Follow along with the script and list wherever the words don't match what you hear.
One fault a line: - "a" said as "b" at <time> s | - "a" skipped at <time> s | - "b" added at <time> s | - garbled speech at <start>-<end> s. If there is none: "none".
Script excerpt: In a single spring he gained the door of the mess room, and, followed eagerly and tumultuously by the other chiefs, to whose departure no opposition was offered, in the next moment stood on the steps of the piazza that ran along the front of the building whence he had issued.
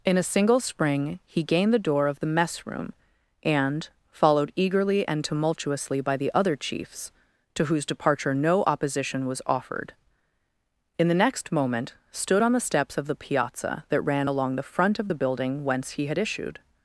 none